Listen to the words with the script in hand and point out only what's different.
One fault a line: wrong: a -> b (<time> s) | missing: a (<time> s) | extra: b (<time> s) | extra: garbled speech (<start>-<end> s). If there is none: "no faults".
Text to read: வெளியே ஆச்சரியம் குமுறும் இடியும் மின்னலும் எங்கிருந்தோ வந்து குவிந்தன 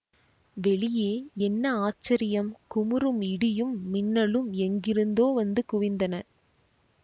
extra: என்ன (1.5 s)